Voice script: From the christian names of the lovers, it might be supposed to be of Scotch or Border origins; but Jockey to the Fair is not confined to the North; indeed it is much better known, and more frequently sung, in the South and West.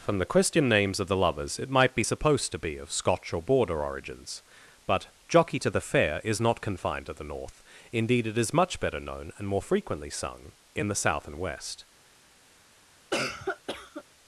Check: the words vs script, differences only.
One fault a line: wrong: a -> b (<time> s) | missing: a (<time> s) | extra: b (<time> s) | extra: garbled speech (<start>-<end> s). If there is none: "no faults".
no faults